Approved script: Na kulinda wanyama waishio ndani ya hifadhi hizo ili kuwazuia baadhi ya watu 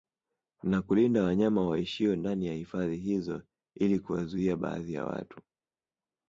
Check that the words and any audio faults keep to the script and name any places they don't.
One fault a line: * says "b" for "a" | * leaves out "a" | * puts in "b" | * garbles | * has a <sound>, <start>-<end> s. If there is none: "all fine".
all fine